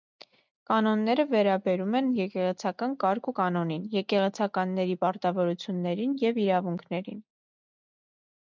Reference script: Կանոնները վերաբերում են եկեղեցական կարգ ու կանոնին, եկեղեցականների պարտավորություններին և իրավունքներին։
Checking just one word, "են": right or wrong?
right